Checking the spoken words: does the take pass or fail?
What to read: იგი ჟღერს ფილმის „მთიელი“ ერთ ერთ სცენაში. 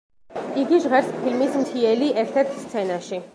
pass